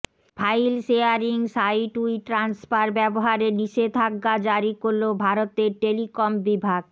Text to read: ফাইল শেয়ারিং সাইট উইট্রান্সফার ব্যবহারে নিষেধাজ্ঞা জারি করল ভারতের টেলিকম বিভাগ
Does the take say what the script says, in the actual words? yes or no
yes